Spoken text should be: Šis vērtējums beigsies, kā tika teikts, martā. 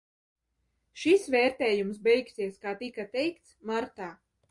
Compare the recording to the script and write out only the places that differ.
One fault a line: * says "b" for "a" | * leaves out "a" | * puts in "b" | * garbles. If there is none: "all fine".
all fine